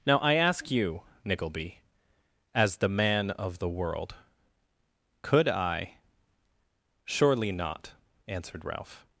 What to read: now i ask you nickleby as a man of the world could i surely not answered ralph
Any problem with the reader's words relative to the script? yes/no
yes